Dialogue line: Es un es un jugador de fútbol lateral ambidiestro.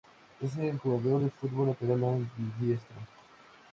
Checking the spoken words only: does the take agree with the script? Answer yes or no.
no